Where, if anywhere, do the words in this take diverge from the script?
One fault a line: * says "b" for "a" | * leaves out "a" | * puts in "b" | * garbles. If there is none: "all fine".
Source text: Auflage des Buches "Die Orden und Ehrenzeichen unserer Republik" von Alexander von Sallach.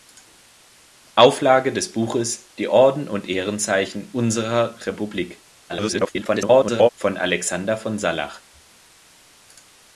* garbles